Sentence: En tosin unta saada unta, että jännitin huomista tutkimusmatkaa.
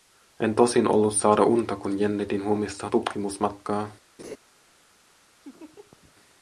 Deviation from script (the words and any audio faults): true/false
true